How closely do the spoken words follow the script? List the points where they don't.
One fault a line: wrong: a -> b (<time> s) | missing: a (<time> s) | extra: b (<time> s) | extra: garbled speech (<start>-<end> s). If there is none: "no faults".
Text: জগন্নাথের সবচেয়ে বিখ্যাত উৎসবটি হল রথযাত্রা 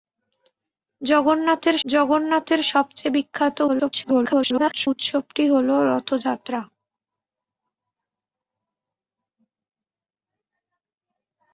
extra: জগন্নাথের (1.8 s)
extra: garbled speech (3.7-4.9 s)